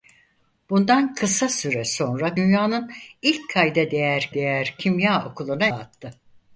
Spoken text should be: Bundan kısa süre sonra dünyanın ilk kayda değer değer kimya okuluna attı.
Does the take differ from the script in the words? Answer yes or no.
no